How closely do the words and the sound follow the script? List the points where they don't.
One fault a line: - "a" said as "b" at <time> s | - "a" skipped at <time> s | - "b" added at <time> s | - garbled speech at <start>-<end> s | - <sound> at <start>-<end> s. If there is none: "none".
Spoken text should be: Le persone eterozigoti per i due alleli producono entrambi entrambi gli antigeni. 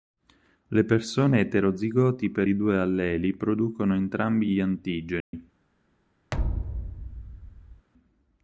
- "entrambi" skipped at 4.5 s
- dropout at 5.2-5.3 s
- thud at 6.3-7.9 s